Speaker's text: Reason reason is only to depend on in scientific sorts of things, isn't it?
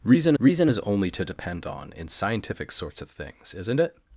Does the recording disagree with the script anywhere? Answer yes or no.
no